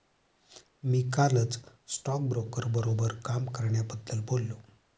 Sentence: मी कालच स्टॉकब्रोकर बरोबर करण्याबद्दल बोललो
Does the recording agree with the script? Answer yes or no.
no